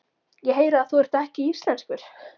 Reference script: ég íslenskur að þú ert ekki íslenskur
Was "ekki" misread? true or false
false